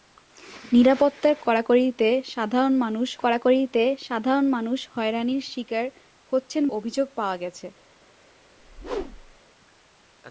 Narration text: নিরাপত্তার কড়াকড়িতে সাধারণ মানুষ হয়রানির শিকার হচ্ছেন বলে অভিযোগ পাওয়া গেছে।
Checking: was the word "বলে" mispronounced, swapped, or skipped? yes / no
yes